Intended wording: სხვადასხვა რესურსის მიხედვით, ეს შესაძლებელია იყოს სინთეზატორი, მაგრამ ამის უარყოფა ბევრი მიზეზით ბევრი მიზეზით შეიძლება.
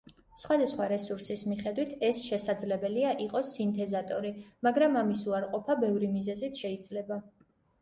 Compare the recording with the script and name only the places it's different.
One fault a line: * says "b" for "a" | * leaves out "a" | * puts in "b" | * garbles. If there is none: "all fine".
* leaves out "ბევრი მიზეზით"